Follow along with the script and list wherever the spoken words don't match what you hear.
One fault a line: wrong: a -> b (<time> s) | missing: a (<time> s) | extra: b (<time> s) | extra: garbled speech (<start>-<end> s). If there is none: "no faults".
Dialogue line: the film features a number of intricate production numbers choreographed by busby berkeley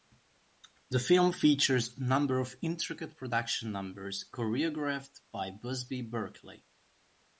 no faults